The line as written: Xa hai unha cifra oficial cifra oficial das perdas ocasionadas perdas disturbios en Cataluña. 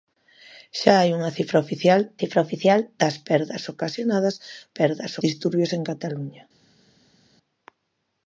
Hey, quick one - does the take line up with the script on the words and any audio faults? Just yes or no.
yes